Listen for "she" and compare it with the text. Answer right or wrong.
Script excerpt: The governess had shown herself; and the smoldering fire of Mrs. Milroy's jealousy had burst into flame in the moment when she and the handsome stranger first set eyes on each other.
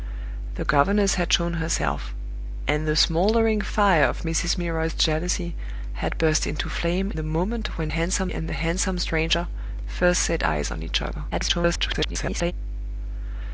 wrong